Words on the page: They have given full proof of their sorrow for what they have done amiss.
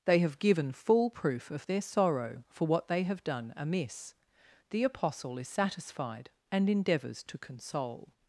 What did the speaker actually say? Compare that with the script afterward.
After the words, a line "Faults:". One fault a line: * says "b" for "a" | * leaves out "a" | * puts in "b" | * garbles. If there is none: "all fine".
They have given full proof of their sorrow for what they have done amiss. The Apostle is satisfied, and endeavours to console
Faults:
* puts in "The Apostle is satisfied and endeavours to console"